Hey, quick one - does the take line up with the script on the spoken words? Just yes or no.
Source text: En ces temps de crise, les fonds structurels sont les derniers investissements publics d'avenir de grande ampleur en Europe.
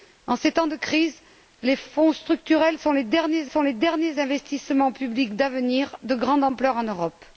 no